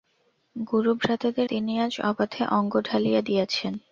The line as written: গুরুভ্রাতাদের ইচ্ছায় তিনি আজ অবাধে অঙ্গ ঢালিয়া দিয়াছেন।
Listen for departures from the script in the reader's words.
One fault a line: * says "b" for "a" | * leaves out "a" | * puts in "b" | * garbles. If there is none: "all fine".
* leaves out "ইচ্ছায়"